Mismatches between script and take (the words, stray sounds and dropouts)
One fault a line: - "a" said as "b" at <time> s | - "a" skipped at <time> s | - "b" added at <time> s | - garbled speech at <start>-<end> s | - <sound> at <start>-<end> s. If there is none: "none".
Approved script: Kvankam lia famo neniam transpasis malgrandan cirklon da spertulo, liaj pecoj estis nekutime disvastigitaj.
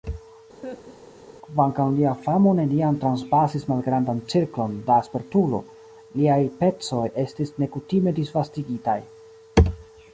- laugh at 0.6-1.3 s